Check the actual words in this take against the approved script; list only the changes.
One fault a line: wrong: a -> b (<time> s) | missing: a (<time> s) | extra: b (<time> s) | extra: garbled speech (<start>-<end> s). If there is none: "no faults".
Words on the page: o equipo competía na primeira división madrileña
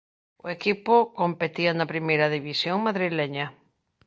no faults